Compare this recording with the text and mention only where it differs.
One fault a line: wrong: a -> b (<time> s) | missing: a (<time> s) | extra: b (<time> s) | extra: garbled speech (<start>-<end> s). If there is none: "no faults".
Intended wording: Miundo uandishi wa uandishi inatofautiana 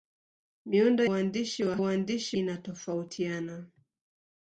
no faults